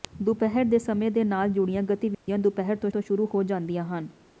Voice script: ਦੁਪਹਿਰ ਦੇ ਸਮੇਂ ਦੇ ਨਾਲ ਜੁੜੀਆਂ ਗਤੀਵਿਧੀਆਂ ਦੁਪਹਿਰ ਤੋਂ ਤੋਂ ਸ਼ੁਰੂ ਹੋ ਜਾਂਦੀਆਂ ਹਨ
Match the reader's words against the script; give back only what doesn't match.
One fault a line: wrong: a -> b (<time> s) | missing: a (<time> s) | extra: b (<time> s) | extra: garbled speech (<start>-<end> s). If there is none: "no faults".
no faults